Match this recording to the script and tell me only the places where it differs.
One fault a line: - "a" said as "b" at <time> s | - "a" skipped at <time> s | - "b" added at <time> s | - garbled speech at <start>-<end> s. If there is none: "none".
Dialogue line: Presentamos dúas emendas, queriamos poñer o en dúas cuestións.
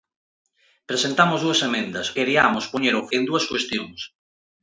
none